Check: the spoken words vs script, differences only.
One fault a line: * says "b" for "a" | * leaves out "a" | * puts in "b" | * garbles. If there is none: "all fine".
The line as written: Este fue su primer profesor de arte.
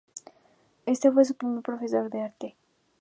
all fine